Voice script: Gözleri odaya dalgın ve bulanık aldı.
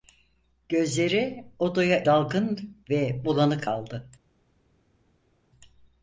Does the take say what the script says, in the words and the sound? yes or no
yes